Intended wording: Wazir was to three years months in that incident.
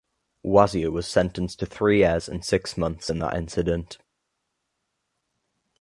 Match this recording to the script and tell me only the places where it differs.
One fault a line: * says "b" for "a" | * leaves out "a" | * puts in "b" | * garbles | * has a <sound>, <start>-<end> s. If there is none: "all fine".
* puts in "sentenced"
* puts in "and six"